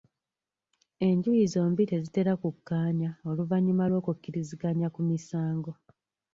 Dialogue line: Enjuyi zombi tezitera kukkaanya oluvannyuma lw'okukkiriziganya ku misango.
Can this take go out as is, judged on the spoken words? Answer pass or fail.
pass